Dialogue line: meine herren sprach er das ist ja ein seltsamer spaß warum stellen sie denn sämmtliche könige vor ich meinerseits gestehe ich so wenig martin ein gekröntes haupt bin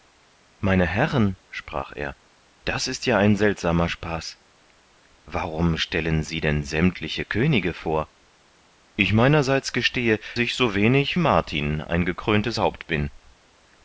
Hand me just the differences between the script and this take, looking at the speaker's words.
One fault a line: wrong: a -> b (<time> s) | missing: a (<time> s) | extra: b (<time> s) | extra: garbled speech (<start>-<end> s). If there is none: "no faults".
no faults